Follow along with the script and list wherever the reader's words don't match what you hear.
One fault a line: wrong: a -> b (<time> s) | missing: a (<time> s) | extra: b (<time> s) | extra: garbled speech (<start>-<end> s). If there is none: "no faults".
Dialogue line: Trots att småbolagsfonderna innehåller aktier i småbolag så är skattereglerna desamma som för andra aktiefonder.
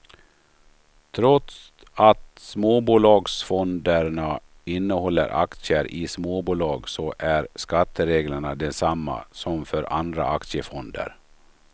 no faults